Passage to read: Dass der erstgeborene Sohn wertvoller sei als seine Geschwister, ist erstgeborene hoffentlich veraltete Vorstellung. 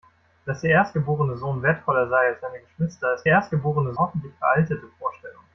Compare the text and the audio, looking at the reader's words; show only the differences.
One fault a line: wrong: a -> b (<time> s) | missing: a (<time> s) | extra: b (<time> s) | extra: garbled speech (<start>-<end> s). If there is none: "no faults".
no faults